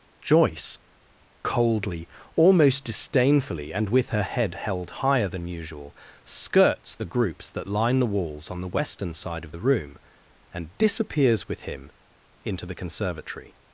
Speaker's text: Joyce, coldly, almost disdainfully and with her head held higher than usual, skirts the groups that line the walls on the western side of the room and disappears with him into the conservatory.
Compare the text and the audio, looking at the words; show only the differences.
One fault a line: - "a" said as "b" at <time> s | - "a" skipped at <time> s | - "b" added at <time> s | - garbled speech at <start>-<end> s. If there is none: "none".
none